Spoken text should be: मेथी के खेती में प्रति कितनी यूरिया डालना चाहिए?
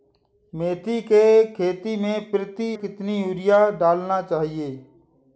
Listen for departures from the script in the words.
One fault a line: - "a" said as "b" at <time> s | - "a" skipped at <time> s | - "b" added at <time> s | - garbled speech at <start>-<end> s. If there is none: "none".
none